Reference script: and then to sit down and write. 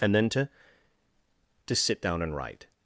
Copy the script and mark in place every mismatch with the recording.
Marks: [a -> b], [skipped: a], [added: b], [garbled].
and then to [added: to] sit down and write.